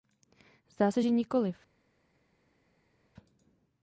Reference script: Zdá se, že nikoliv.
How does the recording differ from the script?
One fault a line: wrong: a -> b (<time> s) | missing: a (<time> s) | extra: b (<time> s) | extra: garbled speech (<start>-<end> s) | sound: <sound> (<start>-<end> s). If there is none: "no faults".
no faults